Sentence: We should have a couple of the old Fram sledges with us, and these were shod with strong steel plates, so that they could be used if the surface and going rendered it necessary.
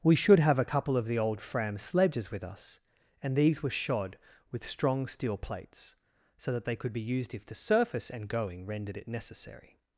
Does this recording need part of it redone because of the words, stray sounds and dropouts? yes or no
no